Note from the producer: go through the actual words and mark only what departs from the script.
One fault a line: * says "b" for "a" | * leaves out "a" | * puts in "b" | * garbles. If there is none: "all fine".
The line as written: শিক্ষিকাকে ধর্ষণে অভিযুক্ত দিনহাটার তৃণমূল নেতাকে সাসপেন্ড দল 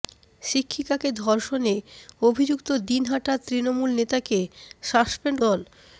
all fine